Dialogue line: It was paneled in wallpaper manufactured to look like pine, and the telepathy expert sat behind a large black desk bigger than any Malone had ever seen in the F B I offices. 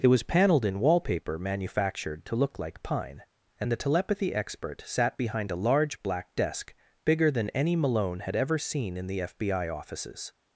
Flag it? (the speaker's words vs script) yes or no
no